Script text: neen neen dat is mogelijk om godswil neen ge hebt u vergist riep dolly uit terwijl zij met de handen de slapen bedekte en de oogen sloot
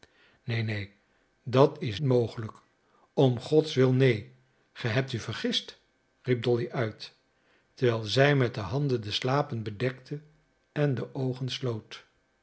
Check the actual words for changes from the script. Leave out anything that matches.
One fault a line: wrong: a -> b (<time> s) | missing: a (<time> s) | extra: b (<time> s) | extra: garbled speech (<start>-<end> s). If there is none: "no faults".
no faults